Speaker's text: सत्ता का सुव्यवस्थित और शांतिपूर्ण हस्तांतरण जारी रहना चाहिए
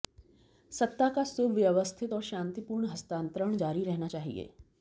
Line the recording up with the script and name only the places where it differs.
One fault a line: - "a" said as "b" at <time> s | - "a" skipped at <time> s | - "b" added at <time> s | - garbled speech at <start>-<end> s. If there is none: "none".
none